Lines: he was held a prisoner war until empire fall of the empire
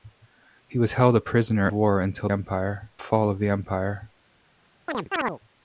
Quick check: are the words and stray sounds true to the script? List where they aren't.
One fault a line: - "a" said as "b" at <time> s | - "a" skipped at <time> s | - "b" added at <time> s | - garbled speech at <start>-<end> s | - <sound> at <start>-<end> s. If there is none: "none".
- chirp at 4.9-5.4 s